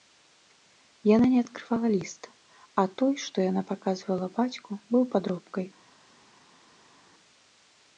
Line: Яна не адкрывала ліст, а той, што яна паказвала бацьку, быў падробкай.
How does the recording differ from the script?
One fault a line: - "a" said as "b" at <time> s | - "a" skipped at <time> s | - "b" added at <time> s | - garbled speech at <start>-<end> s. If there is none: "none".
none